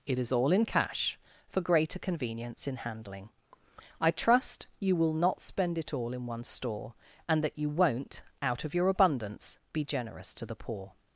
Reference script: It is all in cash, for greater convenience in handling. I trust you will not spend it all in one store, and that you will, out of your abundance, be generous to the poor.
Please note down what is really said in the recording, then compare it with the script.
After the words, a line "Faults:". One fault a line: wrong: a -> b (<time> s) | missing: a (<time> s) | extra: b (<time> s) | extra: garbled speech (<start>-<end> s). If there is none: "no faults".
It is all in cash, for greater convenience in handling. I trust you will not spend it all in one store, and that you won't, out of your abundance, be generous to the poor.
Faults:
wrong: will -> won't (7.7 s)